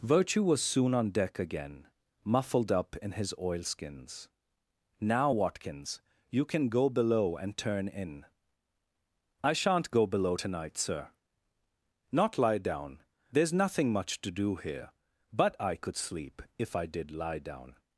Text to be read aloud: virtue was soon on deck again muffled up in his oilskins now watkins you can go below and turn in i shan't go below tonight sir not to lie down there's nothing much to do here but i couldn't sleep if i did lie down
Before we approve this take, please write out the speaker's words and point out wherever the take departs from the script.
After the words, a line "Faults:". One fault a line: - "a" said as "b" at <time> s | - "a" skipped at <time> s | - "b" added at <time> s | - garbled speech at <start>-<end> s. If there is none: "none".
virtue was soon on deck again muffled up in his oilskins now watkins you can go below and turn in i shan't go below tonight sir not lie down there's nothing much to do here but i could sleep if i did lie down
Faults:
- "to" skipped at 12.4 s
- "couldn't" said as "could" at 15.7 s